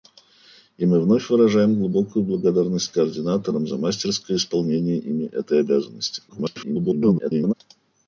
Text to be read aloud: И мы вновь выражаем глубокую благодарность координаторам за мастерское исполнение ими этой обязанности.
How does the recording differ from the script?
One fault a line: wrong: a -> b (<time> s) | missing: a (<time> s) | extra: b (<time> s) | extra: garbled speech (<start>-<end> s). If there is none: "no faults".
extra: garbled speech (6.3-7.5 s)